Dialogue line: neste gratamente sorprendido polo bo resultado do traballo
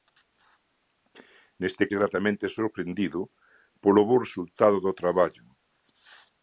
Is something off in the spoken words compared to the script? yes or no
no